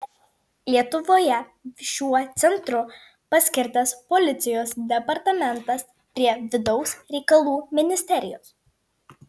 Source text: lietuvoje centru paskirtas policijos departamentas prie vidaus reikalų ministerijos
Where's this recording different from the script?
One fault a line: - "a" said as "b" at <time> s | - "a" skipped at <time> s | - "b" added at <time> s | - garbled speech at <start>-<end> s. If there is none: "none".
- "šiuo" added at 1.9 s